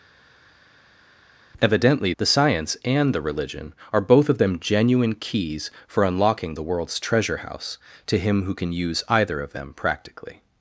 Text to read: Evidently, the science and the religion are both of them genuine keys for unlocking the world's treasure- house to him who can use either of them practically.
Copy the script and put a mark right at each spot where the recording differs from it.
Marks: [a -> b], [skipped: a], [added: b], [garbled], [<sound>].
Evidently, the science and the religion are both of them genuine keys for unlocking the world's treasure- house to him who can use either of them practically.